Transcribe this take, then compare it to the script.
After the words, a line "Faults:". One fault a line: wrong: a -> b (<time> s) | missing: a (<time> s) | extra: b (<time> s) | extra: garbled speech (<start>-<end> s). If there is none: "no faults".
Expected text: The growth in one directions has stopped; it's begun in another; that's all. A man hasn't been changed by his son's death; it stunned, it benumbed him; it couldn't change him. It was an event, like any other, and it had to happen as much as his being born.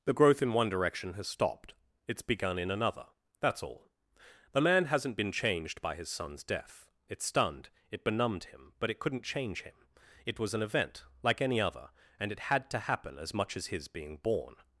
The growth in one direction has stopped; it's begun in another; that's all. The man hasn't been changed by his son's death; it stunned, it benumbed him; but it couldn't change him. It was an event, like any other, and it had to happen as much as his being born.
Faults:
wrong: directions -> direction (0.7 s)
wrong: A -> The (4.5 s)
extra: but (8.8 s)